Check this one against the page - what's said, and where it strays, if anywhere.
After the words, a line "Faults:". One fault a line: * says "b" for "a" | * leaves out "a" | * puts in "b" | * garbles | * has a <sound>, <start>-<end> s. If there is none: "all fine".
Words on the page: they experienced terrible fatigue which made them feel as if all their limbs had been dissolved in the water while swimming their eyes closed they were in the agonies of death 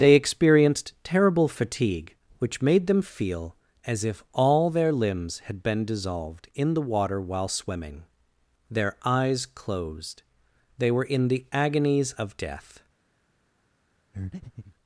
they experienced terrible fatigue which made them feel as if all their limbs had been dissolved in the water while swimming their eyes closed they were in the agonies of death
Faults:
* has a breath, 14.1-14.8 s